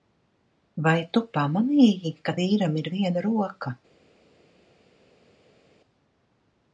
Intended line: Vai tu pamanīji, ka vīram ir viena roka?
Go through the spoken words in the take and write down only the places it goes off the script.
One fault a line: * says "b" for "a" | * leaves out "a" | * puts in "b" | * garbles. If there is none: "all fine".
all fine